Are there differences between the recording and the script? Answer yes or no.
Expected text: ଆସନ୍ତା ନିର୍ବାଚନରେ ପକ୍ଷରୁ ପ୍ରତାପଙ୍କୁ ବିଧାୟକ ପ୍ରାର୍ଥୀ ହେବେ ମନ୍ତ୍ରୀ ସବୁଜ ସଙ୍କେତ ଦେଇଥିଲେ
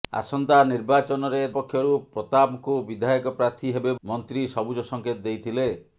no